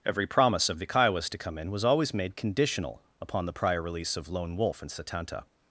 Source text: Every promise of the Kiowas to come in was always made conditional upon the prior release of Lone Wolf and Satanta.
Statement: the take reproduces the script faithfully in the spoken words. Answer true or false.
true